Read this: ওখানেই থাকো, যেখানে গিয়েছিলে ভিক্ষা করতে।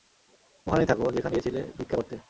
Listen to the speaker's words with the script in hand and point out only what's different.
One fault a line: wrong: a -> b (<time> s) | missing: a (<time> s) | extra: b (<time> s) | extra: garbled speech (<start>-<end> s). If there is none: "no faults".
no faults